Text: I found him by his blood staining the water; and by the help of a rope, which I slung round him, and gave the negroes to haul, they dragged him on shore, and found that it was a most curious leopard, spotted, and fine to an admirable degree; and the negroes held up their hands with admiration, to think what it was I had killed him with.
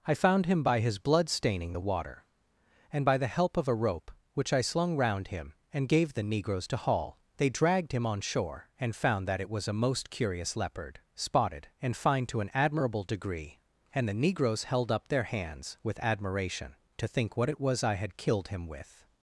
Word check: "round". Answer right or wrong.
right